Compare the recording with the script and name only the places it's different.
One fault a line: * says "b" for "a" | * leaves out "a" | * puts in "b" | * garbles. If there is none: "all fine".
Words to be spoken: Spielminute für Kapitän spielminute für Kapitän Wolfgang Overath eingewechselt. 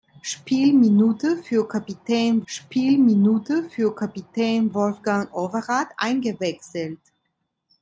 all fine